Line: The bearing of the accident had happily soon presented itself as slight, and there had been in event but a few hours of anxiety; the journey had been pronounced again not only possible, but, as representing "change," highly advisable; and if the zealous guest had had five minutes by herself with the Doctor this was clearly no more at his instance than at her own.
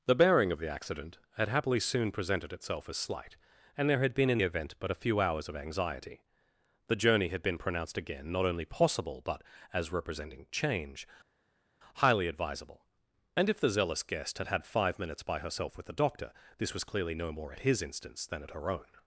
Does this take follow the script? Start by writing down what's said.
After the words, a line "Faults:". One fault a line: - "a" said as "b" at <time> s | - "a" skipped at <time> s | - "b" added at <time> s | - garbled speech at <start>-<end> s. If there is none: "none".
The bearing of the accident had happily soon presented itself as slight, and there had been in event but a few hours of anxiety; the journey had been pronounced again not only possible, but, as representing "change," highly advisable; and if the zealous guest had had five minutes by herself with the Doctor this was clearly no more at his instance than at her own.
Faults:
none